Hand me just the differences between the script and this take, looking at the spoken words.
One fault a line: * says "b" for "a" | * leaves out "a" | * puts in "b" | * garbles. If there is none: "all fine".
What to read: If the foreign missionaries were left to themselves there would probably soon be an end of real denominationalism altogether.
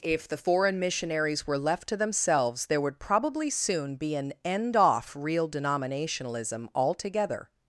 * says "off" for "of"